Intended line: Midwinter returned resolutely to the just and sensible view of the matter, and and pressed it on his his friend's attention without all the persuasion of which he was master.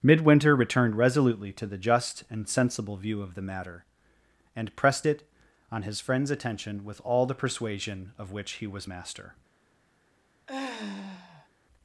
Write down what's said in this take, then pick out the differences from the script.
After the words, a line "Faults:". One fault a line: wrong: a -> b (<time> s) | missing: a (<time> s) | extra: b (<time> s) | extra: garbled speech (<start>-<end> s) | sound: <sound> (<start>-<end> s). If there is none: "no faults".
Midwinter returned resolutely to the just and sensible view of the matter, and pressed it on his friend's attention with all the persuasion of which he was master.
Faults:
missing: and (4.8 s)
missing: his (6.0 s)
wrong: without -> with (6.8 s)
sound: sigh (10.5-11.5 s)